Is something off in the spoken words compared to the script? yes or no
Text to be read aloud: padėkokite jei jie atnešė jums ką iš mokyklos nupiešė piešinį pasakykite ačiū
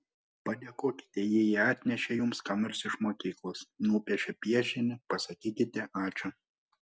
yes